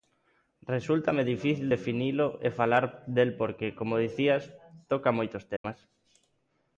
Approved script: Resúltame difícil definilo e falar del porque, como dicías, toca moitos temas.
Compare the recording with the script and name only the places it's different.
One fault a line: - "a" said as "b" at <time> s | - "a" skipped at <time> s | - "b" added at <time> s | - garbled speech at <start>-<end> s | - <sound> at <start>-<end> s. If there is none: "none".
- dropout at 5.6-5.6 s